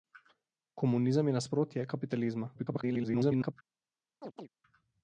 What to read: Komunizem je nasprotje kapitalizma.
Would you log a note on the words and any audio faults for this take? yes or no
yes